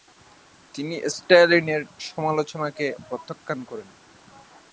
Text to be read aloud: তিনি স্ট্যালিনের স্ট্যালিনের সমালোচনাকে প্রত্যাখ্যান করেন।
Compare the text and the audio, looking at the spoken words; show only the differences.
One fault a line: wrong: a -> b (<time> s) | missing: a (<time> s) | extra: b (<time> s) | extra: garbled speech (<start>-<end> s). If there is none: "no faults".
missing: স্ট্যালিনের (1.8 s)